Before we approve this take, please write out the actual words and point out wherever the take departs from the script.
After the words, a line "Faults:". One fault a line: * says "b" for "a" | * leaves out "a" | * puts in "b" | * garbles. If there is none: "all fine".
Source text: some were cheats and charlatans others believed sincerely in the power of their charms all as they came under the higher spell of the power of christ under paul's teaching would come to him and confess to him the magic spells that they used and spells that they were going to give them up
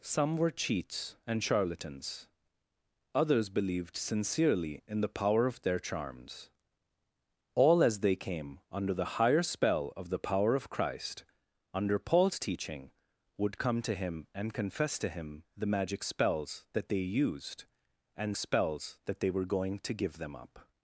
some were cheats and charlatans others believed sincerely in the power of their charms all as they came under the higher spell of the power of christ under paul's teaching would come to him and confess to him the magic spells that they used and spells that they were going to give them up
Faults:
all fine